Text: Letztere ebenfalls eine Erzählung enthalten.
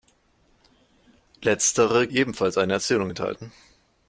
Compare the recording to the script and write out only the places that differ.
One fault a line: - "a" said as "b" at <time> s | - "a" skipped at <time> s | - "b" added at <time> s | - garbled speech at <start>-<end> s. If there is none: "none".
none